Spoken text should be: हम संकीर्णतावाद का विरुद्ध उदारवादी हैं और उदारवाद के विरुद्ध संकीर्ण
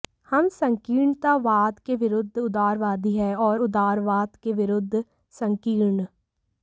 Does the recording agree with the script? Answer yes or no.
no